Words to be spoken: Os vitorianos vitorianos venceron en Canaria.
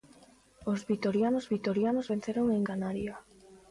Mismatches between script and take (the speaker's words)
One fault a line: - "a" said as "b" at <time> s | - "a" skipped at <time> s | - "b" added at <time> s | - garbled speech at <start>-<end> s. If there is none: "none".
none